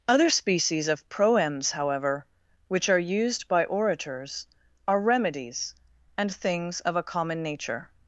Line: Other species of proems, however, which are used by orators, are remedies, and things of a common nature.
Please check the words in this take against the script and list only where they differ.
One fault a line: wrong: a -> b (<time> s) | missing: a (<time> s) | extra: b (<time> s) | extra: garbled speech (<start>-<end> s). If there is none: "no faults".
no faults